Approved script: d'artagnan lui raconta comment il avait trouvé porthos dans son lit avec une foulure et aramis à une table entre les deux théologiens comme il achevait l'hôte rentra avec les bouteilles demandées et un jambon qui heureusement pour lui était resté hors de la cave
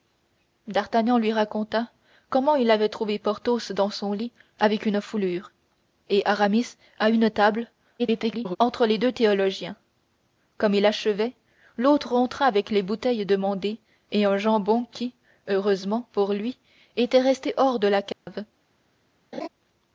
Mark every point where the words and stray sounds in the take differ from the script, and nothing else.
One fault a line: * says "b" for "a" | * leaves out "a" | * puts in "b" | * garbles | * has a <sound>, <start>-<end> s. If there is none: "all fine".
* garbles
* has a dropout, 18.1-18.3 s
* has a laugh, 19.3-19.5 s